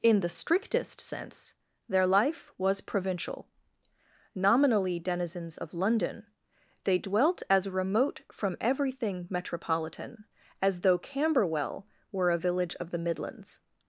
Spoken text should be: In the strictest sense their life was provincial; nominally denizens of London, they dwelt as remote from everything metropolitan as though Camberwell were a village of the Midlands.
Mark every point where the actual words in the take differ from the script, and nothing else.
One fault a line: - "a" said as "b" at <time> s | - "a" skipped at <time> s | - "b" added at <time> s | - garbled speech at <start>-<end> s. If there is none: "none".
none